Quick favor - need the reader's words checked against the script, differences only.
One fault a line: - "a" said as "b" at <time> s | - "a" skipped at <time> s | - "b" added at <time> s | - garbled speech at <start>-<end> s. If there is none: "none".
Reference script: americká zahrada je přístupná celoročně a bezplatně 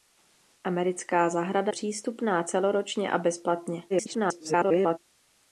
- "je" skipped at 1.7 s
- garbled speech at 3.9-5.0 s